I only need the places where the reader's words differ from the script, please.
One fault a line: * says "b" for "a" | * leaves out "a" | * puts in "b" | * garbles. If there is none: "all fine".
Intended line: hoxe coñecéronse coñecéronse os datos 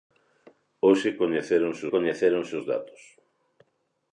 all fine